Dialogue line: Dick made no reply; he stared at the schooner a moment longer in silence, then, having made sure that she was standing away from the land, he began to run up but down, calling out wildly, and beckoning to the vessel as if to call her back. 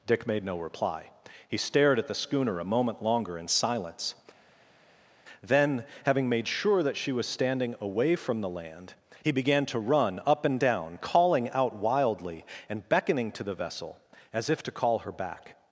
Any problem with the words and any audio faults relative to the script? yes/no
yes